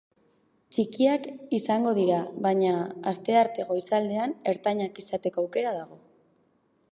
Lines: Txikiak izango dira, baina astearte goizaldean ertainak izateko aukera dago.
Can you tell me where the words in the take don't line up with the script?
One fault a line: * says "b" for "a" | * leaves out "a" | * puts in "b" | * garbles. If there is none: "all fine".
all fine